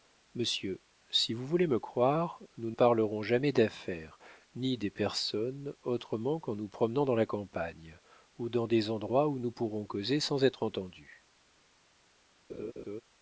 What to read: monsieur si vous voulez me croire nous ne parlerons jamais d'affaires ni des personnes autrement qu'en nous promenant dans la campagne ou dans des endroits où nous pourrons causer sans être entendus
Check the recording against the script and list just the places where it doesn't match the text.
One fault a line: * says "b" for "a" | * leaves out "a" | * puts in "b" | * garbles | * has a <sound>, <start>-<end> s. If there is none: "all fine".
* leaves out "ne"
* has a laugh, 12.5-13.0 s